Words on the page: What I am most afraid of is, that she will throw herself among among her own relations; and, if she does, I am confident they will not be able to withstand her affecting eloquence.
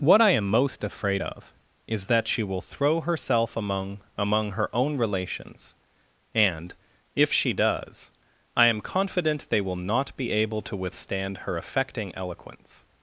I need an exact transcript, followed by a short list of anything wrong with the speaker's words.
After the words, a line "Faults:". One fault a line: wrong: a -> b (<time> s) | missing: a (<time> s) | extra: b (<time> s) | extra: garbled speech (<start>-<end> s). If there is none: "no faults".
What I am most afraid of is, that she will throw herself among among her own relations; and, if she does, I am confident they will not be able to withstand her affecting eloquence.
Faults:
no faults